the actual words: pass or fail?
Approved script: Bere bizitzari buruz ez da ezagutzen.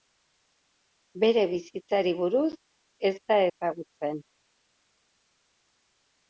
pass